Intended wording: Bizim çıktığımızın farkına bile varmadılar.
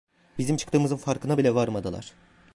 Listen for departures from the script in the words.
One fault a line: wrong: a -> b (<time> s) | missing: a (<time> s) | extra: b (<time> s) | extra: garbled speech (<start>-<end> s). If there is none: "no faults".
no faults